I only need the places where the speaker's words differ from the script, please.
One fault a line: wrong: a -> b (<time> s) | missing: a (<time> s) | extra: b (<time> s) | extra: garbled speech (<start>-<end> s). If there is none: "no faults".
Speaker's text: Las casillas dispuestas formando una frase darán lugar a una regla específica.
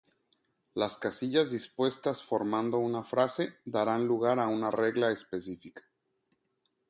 no faults